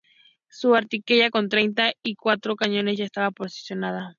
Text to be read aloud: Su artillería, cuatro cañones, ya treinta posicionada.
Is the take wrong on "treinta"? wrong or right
wrong